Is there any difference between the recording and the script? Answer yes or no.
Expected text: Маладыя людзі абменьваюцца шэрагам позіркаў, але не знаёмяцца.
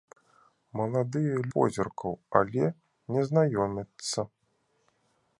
yes